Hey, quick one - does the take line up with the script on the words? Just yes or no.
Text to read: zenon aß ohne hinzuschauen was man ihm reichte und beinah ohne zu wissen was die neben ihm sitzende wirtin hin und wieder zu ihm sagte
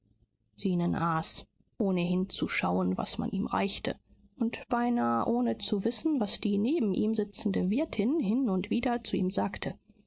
yes